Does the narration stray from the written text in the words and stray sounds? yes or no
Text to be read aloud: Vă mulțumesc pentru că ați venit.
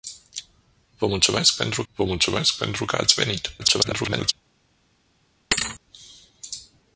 yes